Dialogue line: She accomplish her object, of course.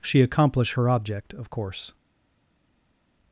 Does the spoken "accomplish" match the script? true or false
true